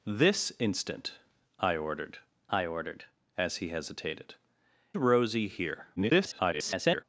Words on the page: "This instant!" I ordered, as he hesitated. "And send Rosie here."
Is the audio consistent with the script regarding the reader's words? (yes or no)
no